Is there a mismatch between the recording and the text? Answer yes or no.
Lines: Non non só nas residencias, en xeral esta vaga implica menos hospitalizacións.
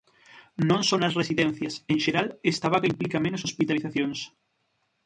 yes